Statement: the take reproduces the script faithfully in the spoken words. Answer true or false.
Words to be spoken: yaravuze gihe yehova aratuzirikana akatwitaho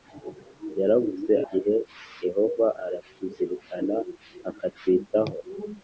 true